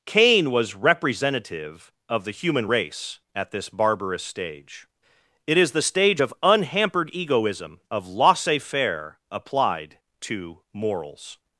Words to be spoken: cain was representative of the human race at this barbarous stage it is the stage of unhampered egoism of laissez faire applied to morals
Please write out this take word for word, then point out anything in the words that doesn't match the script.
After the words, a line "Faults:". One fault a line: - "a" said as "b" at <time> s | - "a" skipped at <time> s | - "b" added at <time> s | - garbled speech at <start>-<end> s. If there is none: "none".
cain was representative of the human race at this barbarous stage it is the stage of unhampered egoism of laissez faire applied to morals
Faults:
none